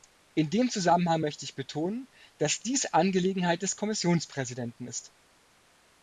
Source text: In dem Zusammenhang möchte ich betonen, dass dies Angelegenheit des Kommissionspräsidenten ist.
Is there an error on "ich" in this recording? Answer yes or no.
no